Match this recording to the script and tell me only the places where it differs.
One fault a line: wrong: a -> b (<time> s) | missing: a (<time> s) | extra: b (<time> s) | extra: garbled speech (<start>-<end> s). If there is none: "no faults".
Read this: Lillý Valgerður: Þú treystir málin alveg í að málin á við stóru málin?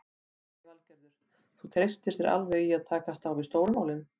wrong: málin -> þér (2.2 s)
wrong: málin -> takast (2.9 s)